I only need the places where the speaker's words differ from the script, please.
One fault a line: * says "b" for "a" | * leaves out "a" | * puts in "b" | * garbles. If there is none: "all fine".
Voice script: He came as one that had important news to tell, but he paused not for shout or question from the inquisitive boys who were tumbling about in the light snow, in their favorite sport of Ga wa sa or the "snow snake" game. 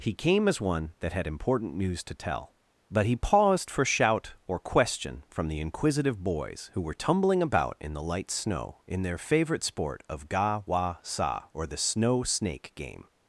* leaves out "not"